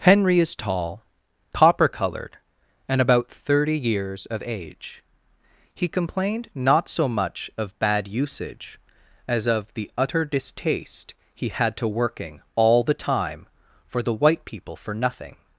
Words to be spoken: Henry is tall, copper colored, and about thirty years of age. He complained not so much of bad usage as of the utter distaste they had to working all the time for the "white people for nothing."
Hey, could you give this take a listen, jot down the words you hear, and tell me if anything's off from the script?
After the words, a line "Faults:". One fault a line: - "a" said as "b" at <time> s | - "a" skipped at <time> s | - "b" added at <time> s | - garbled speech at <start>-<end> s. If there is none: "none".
Henry is tall, copper colored, and about thirty years of age. He complained not so much of bad usage as of the utter distaste he had to working all the time for the "white people for nothing."
Faults:
- "they" said as "he" at 11.3 s